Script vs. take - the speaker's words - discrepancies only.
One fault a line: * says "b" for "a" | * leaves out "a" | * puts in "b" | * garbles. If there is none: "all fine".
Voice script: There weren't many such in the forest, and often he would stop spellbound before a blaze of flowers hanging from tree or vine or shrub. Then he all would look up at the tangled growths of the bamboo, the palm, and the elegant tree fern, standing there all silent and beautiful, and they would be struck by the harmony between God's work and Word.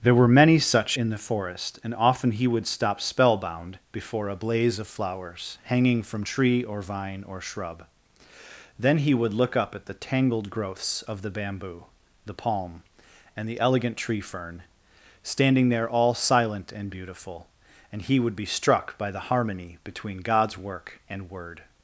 * says "were" for "weren't"
* leaves out "all"
* says "he" for "they"